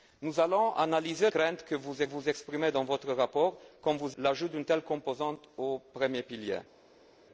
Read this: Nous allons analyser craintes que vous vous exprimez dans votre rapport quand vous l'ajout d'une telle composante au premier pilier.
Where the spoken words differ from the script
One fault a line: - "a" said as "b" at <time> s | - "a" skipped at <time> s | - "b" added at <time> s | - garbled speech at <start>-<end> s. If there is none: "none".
none